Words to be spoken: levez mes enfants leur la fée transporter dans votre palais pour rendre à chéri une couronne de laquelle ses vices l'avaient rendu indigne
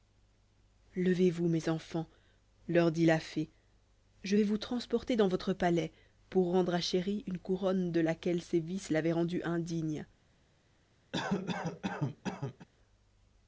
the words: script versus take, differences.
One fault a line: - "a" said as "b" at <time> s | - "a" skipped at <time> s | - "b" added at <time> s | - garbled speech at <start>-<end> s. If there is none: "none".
- "vous" added at 1.3 s
- "dit" added at 2.9 s
- "je vais vous" added at 4.2 s